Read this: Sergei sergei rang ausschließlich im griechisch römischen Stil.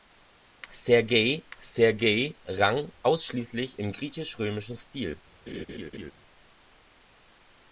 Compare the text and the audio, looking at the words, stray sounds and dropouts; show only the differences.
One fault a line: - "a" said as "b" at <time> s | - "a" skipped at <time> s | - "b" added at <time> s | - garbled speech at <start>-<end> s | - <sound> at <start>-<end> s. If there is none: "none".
- laugh at 5.5-6.1 s